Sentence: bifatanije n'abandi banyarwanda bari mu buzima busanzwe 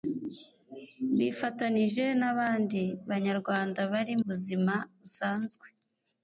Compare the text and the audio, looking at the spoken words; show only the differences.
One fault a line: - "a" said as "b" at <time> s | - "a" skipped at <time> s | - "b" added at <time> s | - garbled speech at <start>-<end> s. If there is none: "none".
- "mu" skipped at 4.2 s